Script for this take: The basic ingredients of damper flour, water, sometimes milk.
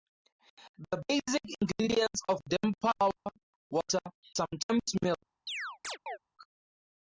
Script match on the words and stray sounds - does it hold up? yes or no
no